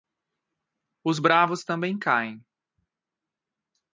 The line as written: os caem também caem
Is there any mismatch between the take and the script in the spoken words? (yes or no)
yes